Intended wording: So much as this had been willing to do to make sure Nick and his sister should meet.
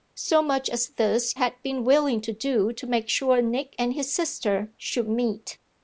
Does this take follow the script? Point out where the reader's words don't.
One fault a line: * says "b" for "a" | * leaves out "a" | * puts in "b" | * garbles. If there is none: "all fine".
all fine